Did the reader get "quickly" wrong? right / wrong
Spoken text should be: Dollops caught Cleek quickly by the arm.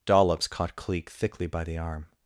wrong